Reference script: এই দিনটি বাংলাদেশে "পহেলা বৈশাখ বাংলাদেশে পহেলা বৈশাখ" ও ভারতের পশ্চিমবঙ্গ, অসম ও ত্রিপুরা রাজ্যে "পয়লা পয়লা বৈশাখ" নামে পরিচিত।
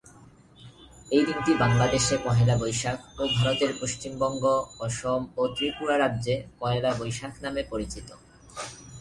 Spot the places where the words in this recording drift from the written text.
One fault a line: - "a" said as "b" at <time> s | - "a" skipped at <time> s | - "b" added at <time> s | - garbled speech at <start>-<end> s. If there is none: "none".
- "বাংলাদেশে পহেলা বৈশাখ" skipped at 3.0 s
- "পয়লা" skipped at 6.9 s